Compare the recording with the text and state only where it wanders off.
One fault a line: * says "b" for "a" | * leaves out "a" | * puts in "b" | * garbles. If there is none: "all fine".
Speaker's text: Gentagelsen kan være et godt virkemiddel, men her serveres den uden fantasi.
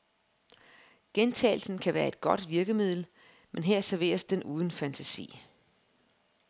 all fine